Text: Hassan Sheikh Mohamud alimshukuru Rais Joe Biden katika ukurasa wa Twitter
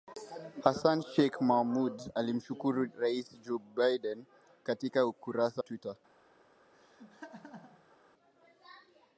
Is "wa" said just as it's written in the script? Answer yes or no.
no